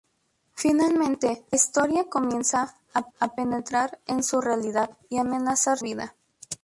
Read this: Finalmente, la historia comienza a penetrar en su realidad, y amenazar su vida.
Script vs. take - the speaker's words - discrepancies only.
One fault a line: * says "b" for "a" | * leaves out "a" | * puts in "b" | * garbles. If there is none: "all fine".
* leaves out "la"
* puts in "a"
* leaves out "su"